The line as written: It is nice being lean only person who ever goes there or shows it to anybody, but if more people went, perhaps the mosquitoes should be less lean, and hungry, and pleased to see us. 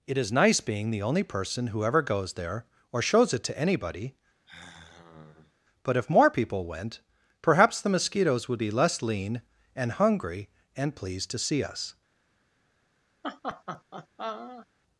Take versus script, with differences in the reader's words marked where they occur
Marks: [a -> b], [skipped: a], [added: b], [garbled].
It is nice being [lean -> the] only person who ever goes there or shows it to anybody, but if more people went, perhaps the mosquitoes [should -> would] be less lean, and hungry, and pleased to see us.